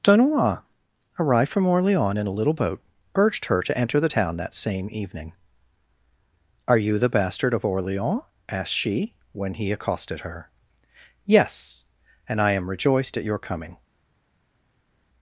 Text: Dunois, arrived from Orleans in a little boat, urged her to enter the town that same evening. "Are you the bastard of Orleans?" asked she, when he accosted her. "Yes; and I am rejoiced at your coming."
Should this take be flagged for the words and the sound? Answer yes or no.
no